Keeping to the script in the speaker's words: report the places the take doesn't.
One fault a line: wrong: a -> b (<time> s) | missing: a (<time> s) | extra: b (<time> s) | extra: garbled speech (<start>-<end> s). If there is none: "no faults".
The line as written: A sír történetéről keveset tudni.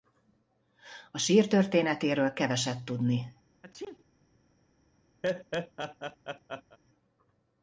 no faults